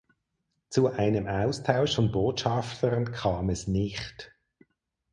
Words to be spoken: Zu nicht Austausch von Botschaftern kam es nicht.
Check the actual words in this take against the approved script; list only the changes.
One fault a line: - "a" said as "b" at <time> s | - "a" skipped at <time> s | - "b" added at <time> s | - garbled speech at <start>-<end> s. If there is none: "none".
- "nicht" said as "einem" at 0.9 s